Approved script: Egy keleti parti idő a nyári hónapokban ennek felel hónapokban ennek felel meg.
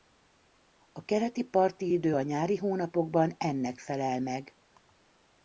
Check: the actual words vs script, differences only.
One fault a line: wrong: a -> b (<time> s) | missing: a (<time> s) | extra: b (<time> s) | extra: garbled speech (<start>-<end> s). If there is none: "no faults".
wrong: Egy -> A (0.9 s)
missing: hónapokban ennek felel (4.2 s)